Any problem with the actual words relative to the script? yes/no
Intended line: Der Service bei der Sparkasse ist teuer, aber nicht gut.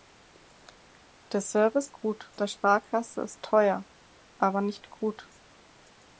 yes